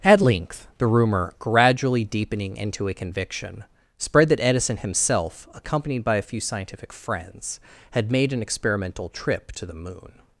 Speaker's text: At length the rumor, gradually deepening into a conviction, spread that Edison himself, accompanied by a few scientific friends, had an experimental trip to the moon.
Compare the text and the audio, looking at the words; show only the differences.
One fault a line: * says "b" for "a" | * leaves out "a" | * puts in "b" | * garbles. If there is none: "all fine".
* puts in "made"